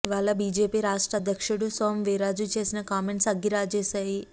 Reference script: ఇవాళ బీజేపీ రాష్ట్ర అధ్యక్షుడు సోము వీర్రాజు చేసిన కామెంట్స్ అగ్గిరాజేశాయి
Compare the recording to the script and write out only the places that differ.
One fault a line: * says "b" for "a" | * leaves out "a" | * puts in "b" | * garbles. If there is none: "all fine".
all fine